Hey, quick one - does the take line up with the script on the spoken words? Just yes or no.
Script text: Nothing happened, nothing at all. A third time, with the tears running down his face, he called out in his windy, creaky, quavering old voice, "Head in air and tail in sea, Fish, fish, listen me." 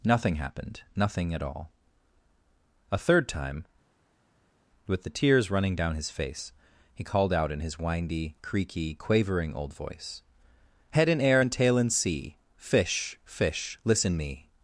yes